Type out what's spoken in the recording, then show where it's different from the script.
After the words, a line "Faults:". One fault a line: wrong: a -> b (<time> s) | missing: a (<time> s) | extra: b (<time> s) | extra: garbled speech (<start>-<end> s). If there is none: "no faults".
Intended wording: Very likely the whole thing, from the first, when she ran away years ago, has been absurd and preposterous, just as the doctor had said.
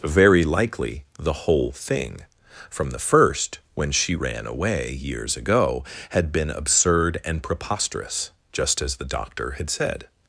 Very likely the whole thing, from the first, when she ran away years ago, had been absurd and preposterous, just as the doctor had said.
Faults:
wrong: has -> had (6.1 s)